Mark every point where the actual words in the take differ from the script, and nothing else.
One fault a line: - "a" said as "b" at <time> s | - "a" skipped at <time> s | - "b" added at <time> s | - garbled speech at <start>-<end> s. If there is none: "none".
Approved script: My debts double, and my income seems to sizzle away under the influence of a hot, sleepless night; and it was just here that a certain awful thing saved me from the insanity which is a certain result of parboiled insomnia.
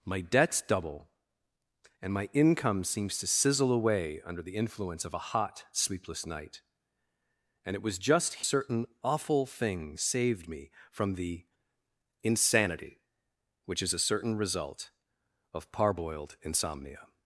- "here that a" skipped at 8.4 s